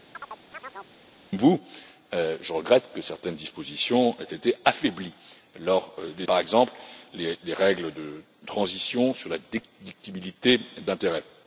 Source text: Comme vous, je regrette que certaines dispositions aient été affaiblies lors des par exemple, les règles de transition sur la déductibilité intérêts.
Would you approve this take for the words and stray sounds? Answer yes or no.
no